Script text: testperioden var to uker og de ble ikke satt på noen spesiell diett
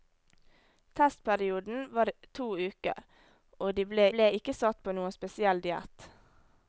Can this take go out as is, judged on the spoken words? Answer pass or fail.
fail